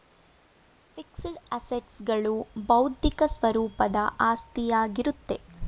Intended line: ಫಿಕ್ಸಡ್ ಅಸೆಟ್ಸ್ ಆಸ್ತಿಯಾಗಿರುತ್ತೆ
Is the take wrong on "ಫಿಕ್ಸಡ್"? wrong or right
right